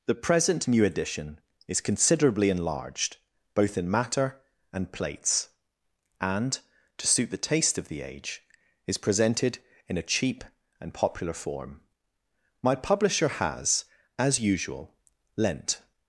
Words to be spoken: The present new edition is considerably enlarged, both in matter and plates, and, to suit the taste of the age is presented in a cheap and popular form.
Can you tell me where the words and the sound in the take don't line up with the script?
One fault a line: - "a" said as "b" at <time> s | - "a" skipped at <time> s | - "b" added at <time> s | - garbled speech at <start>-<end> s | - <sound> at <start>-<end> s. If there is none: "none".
- "My Publisher has as usual lent" added at 12.6 s